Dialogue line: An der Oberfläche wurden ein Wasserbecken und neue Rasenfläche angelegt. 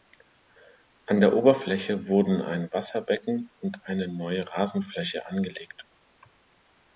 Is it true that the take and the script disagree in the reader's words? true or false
true